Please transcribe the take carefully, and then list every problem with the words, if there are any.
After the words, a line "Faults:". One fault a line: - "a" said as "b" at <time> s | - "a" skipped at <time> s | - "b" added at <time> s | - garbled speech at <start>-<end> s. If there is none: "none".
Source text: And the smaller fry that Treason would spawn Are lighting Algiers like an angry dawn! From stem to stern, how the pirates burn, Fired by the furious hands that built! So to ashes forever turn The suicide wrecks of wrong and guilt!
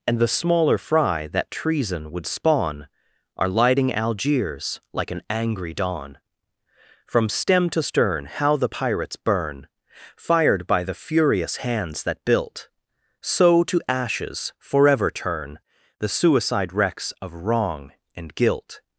And the smaller fry that Treason would spawn Are lighting Algiers like an angry dawn! From stem to stern, how the pirates burn, Fired by the furious hands that built! So to ashes forever turn The suicide wrecks of wrong and guilt!
Faults:
none